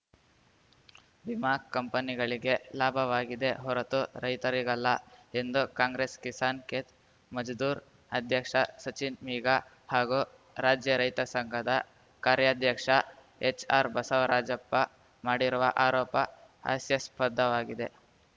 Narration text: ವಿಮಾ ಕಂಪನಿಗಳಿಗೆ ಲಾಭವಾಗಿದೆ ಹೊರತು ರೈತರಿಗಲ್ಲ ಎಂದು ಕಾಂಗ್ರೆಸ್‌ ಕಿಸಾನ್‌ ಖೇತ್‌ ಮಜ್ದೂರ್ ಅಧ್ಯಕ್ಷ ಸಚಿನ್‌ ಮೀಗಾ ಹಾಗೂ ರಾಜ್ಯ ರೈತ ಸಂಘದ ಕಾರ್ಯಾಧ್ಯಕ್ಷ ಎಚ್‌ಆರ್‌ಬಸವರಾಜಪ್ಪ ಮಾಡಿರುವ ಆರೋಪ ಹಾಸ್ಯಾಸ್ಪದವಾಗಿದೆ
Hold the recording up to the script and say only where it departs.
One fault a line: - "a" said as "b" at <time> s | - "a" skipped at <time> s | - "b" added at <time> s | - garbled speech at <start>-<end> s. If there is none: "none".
none